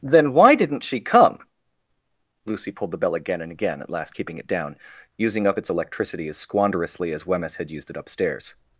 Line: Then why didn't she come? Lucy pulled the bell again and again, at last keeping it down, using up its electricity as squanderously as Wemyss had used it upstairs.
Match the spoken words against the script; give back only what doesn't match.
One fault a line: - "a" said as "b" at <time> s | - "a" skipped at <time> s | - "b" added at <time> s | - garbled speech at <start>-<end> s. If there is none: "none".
none